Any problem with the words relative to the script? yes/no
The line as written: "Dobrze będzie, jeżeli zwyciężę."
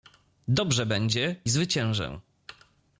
yes